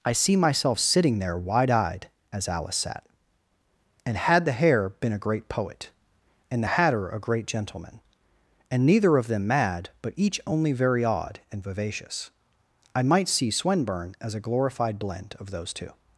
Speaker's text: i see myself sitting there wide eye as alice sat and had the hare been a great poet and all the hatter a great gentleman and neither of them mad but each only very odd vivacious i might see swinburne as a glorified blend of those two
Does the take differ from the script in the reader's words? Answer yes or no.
yes